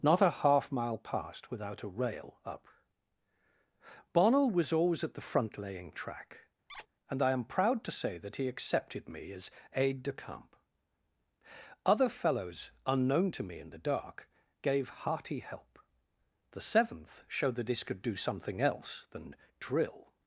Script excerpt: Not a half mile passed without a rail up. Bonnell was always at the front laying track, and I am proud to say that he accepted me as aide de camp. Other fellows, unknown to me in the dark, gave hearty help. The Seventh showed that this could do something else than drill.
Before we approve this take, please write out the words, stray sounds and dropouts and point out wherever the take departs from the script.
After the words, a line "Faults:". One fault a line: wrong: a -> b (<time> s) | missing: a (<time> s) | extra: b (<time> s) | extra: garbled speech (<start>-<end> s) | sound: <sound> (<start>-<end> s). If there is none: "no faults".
Not a half mile passed without a rail up. Bonnell was always at the front laying track, and I am proud to say that he accepted me as aide de camp. Other fellows, unknown to me in the dark, gave hearty help. The Seventh showed that this could do something else than drill.
Faults:
sound: squeak (6.7-6.9 s)